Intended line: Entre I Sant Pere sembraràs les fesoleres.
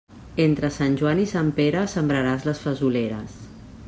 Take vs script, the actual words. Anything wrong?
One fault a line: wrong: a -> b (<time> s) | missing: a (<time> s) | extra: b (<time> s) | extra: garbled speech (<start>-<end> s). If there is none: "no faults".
extra: Sant Joan (0.8 s)